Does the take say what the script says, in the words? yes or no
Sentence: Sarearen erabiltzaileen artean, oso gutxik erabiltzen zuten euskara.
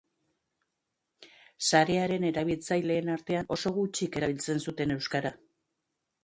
yes